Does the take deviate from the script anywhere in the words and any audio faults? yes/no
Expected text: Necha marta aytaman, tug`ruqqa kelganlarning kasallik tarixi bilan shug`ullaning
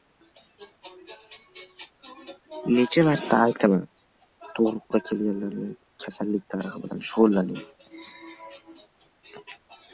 no